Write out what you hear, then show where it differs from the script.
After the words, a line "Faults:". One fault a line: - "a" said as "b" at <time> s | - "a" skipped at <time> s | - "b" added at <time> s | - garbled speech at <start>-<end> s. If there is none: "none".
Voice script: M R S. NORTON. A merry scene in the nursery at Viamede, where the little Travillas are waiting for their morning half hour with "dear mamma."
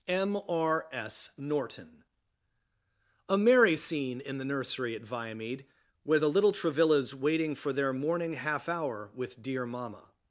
M R S. NORTON. A merry scene in the nursery at Viamede, where the little Travillas waiting for their morning half hour with "dear mamma."
Faults:
- "are" skipped at 7.1 s